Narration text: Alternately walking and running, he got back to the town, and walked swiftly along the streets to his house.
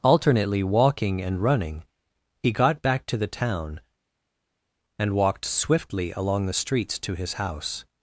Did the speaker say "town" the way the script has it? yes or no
yes